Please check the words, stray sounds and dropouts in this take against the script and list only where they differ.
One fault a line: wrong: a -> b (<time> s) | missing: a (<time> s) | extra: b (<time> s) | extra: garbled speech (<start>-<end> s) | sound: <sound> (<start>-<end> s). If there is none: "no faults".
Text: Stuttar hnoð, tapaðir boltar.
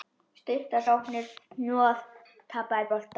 extra: sóknir (0.8 s)